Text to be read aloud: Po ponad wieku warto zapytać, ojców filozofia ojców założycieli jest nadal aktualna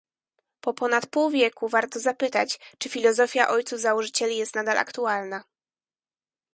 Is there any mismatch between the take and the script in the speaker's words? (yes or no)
yes